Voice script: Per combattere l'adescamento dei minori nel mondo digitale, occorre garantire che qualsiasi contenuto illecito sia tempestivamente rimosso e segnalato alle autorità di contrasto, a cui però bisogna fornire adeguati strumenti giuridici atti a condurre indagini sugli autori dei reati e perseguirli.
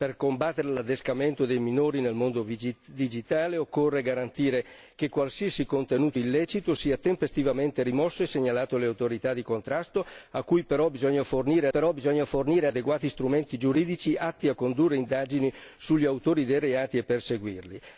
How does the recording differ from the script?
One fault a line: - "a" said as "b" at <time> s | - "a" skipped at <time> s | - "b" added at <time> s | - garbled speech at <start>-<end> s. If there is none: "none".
- "però bisogna fornire" added at 11.7 s